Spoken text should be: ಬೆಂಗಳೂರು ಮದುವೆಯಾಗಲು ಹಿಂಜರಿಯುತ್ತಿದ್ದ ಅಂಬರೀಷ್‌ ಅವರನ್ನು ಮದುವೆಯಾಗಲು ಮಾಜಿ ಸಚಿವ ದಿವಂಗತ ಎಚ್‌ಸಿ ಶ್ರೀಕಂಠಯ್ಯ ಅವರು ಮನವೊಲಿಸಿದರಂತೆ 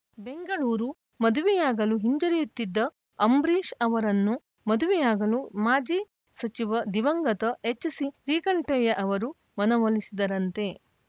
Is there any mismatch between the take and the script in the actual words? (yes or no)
no